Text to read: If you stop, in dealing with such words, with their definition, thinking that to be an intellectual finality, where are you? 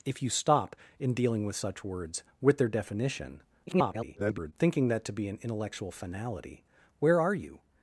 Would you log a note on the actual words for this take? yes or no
yes